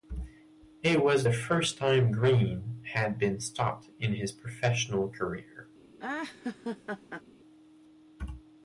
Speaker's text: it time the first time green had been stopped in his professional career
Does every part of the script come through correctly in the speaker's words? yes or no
no